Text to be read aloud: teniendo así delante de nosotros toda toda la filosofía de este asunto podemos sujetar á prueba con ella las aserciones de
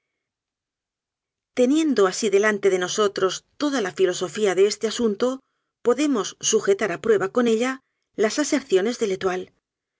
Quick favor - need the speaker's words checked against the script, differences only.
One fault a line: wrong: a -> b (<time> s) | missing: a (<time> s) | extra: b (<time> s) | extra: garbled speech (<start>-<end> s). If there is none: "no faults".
missing: toda (3.8 s)